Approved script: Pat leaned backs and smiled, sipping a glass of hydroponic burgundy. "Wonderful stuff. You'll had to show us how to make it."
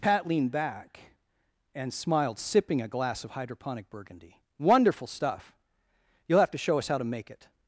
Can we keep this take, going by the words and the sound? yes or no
no